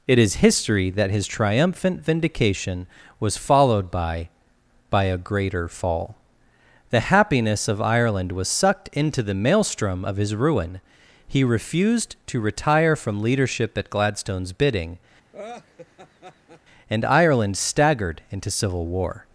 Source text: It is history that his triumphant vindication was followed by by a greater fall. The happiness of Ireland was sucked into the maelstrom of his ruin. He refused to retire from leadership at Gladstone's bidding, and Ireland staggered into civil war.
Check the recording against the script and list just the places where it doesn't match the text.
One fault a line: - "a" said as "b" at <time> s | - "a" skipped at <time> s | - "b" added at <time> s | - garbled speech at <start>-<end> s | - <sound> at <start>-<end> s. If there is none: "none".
- laugh at 15.3-16.6 s